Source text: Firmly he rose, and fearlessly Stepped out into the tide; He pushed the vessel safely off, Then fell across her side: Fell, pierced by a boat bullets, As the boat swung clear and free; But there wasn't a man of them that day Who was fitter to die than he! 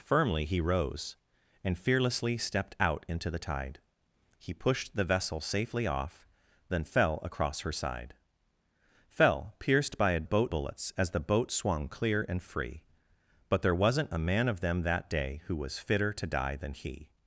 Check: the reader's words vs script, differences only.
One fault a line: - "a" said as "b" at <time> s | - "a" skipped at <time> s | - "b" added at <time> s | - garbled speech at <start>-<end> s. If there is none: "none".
none